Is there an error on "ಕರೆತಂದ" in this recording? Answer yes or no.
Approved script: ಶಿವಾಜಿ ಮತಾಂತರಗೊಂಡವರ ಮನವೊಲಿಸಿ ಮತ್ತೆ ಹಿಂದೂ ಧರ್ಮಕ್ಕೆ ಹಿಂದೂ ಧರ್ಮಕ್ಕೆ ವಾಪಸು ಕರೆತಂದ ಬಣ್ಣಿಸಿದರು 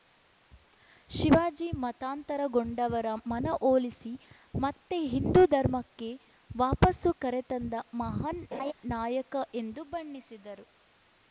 yes